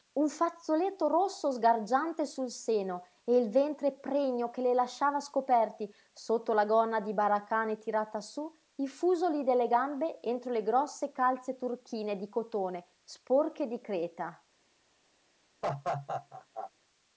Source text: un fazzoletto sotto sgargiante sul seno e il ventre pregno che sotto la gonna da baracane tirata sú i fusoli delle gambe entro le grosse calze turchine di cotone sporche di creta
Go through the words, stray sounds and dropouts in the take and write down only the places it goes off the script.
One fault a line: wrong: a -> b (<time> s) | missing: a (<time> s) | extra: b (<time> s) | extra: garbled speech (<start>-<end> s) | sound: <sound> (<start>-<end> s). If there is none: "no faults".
wrong: sotto -> rosso (1.1 s)
extra: le lasciava scoperti (4.6 s)
wrong: da -> di (7.0 s)
sound: laugh (15.6-16.7 s)